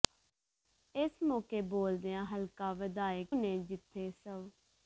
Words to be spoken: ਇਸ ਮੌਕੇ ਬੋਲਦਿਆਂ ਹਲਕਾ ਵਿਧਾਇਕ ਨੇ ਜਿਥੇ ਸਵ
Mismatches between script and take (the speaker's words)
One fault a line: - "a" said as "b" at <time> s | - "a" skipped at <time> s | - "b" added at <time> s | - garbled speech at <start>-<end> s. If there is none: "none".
none